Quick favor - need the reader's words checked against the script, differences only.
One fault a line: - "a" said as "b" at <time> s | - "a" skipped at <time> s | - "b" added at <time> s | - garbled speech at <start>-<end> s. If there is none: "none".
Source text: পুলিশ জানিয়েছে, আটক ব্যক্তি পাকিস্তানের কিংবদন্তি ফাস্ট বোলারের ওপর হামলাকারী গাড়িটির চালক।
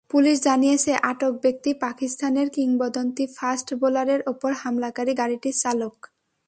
none